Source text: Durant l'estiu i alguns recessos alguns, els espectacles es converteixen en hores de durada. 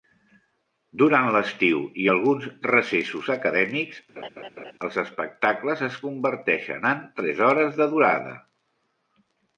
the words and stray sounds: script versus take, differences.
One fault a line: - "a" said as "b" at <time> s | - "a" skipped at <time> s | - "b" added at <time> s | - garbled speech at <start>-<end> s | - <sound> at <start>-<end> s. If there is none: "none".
- "alguns" said as "acadèmics" at 3.3 s
- laugh at 4.2-4.7 s
- "tres" added at 7.2 s